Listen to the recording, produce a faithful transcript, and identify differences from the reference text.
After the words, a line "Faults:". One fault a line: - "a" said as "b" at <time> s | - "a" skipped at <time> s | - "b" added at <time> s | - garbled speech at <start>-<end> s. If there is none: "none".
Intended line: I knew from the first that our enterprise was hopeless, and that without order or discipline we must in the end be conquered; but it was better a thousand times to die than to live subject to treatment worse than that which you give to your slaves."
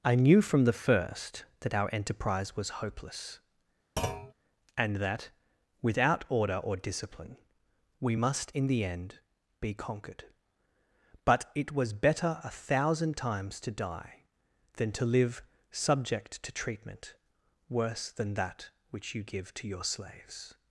I knew from the first that our enterprise was hopeless, and that without order or discipline we must in the end be conquered; but it was better a thousand times to die than to live subject to treatment worse than that which you give to your slaves."
Faults:
none